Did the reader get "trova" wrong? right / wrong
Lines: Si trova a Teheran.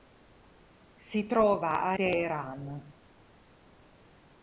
right